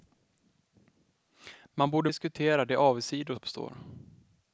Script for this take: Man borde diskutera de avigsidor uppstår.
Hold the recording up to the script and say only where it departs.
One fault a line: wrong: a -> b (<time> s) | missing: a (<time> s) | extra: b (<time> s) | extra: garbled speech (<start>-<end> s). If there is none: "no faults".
no faults